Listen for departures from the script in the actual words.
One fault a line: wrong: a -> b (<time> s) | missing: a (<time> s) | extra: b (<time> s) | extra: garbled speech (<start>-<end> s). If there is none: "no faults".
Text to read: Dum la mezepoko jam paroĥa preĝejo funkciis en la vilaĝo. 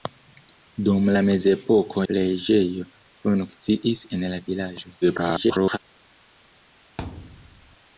missing: jam paroĥa (2.0 s)
extra: garbled speech (5.0-5.8 s)